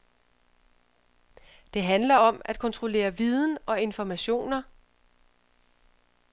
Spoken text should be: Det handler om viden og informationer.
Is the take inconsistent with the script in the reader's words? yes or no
yes